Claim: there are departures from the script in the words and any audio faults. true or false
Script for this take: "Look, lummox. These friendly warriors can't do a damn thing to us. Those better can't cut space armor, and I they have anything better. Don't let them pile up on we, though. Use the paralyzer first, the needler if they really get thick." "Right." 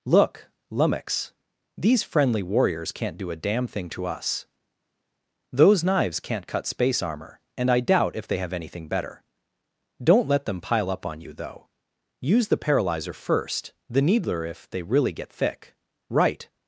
true